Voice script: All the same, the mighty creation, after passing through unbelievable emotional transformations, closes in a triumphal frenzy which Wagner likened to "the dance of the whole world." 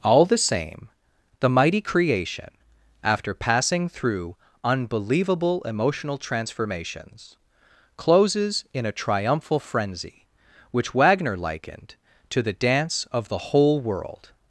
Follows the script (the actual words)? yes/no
yes